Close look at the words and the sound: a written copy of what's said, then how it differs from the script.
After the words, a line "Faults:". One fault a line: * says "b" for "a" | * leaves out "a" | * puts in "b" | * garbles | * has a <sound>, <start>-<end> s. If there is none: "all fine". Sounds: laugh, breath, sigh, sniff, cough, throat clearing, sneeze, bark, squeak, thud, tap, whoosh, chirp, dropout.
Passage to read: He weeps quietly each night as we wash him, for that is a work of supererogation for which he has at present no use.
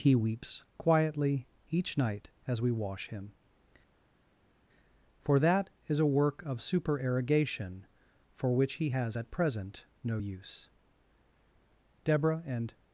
He weeps quietly each night as we wash him, for that is a work of supererogation for which he has at present no use. Deborah and
Faults:
* puts in "Deborah and"